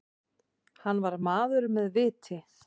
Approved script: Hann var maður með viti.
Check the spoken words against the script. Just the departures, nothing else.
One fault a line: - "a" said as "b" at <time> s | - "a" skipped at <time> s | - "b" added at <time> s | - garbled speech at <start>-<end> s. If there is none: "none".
none